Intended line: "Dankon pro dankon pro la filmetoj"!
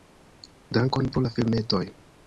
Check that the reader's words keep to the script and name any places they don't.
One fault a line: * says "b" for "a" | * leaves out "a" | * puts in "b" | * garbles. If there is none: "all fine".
* leaves out "dankon pro"